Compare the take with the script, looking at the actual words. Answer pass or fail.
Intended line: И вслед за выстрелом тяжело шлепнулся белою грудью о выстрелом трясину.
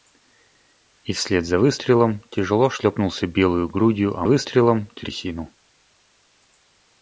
pass